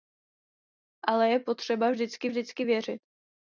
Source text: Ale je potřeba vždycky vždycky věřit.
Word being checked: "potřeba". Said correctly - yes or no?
yes